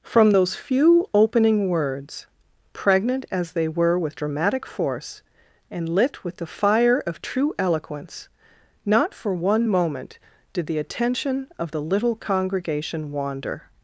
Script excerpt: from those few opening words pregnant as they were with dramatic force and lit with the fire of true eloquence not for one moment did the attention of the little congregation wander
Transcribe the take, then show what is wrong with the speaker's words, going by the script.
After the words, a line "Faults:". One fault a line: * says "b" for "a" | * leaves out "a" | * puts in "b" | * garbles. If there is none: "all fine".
from those few opening words pregnant as they were with dramatic force and lit with the fire of true eloquence not for one moment did the attention of the little congregation wander
Faults:
all fine